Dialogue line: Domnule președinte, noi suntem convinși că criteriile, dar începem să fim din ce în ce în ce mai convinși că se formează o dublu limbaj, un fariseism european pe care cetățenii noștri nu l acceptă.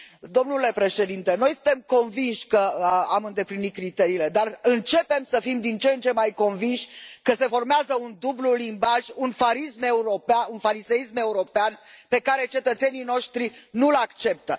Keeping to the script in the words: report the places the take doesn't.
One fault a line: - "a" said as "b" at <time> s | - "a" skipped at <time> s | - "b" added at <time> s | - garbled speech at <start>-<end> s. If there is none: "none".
- "am îndeplinit" added at 3.1 s
- "în ce" skipped at 6.1 s
- "o" said as "un" at 8.0 s